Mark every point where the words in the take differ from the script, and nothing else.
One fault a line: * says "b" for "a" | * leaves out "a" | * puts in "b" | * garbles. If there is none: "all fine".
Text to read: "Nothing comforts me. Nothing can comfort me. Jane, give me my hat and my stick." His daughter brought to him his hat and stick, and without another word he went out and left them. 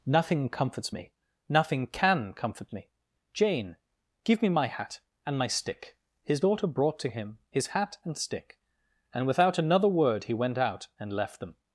all fine